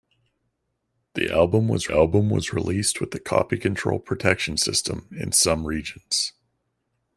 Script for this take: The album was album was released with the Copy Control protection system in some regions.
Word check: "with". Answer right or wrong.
right